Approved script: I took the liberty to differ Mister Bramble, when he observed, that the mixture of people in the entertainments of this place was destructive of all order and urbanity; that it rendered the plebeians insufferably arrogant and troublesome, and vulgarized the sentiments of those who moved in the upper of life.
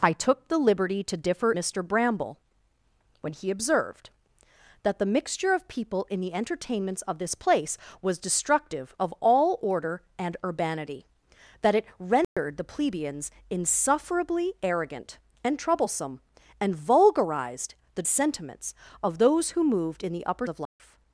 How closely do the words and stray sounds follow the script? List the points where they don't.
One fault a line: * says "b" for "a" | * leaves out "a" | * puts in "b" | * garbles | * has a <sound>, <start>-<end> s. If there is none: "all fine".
* has a dropout, 12.2-12.4 s
* has a dropout, 20.6-20.8 s